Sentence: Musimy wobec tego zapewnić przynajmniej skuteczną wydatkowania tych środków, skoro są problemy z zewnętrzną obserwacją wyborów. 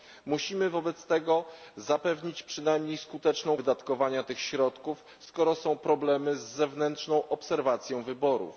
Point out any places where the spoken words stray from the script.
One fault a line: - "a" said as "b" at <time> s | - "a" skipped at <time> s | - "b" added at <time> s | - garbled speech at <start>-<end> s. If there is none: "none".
none